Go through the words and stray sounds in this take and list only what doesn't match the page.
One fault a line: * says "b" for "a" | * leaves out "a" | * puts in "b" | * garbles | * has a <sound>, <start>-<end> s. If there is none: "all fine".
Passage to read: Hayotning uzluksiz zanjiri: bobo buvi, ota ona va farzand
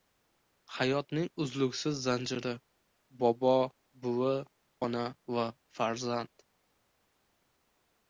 * leaves out "ota"